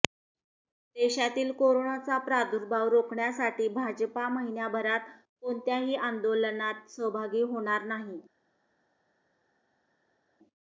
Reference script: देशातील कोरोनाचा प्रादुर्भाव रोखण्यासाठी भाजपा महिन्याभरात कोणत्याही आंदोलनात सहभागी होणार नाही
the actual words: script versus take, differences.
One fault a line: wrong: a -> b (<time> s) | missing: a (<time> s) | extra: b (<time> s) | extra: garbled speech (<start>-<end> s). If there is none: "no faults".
no faults